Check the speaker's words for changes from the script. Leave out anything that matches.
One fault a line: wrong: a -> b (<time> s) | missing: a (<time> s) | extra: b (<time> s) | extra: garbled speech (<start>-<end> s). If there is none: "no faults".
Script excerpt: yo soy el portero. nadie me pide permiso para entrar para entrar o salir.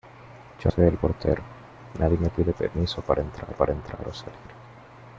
no faults